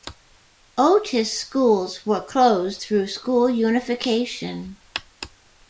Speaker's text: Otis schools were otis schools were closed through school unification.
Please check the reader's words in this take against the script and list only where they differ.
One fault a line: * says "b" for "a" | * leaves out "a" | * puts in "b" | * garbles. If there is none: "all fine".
* leaves out "otis schools were"